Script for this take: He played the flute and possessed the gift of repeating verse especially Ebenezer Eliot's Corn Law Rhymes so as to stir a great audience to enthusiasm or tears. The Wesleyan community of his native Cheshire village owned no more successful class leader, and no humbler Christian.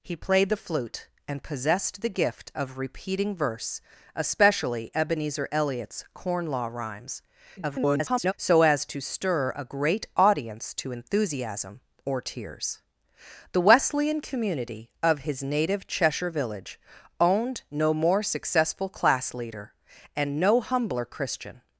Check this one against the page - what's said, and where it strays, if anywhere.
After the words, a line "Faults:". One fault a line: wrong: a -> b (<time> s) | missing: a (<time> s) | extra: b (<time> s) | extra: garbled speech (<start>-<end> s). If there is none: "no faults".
He played the flute and possessed the gift of repeating verse especially Ebenezer Eliot's Corn Law Rhymes [garbled] so as to stir a great audience to enthusiasm or tears. The Wesleyan community of his native Cheshire village owned no more successful class leader, and no humbler Christian.
Faults:
extra: garbled speech (7.6-8.3 s)